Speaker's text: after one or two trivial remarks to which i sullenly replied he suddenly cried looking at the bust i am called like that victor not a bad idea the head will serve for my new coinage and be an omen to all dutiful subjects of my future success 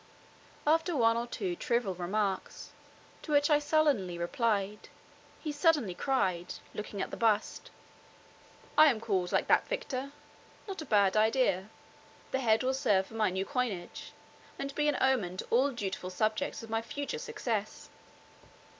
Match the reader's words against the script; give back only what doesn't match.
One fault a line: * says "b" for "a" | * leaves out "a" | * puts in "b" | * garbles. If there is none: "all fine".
all fine